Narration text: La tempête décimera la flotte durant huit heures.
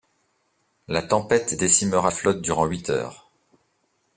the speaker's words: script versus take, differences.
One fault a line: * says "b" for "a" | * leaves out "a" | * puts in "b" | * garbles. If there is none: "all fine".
* leaves out "la"